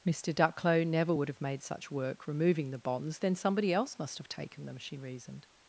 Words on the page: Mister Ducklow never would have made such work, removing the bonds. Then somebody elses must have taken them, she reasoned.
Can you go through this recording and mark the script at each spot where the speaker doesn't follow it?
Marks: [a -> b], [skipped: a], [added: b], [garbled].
Mister Ducklow never would have made such work, removing the bonds. Then somebody [elses -> else] must have taken them, she reasoned.